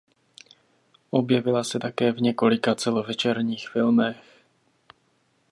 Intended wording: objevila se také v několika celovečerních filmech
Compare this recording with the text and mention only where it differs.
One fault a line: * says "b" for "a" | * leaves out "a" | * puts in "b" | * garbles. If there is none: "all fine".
all fine